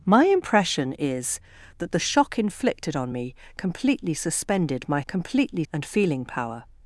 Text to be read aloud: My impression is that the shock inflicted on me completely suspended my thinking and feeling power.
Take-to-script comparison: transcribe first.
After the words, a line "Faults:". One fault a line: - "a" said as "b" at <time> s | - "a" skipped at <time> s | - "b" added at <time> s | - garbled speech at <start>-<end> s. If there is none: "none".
My impression is that the shock inflicted on me completely suspended my completely and feeling power.
Faults:
- "thinking" said as "completely" at 5.1 s